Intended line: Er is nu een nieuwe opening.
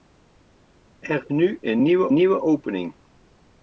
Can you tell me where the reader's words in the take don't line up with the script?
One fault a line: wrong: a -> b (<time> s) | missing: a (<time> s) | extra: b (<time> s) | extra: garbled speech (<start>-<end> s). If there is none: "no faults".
missing: is (1.2 s)
extra: nieuwe (2.1 s)